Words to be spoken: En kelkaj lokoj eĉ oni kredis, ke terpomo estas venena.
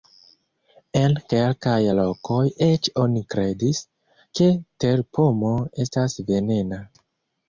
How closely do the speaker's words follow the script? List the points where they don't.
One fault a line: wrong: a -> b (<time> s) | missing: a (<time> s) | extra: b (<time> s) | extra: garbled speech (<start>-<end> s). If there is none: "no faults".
no faults